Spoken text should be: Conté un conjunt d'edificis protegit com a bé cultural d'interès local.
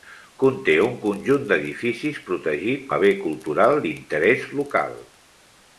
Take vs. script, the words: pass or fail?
fail